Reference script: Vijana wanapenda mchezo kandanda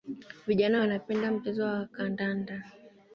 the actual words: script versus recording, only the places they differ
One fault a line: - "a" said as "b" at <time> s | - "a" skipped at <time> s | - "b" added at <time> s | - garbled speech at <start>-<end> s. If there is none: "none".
- "wa" added at 1.6 s